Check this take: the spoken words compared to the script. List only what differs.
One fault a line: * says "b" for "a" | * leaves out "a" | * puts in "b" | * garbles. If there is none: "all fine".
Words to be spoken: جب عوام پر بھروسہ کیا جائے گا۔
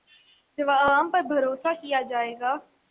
all fine